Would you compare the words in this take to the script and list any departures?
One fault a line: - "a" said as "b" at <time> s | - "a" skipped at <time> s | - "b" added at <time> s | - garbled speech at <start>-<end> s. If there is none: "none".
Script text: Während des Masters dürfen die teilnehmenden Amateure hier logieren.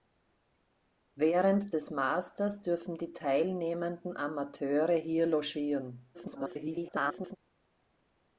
- garbled speech at 6.1-7.4 s